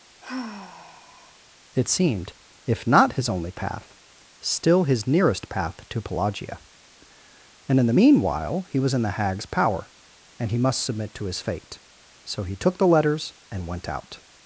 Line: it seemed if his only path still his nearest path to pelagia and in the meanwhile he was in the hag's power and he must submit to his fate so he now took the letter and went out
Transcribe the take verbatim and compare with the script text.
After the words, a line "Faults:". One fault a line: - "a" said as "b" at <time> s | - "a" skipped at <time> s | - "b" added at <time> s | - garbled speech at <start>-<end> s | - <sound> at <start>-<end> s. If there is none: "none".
it seemed if not his only path still his nearest path to pelagia and in the meanwhile he was in the hag's power and he must submit to his fate so he took the letters and went out
Faults:
- sigh at 0.2-1.4 s
- "not" added at 2.9 s
- "now" skipped at 12.6 s
- "letter" said as "letters" at 12.9 s